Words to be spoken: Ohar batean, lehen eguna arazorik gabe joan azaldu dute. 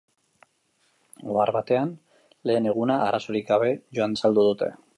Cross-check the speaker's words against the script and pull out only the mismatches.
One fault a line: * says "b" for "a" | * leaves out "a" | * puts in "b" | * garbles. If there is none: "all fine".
all fine